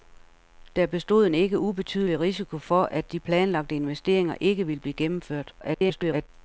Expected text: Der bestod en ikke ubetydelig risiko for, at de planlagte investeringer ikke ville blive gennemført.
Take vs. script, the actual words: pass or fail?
fail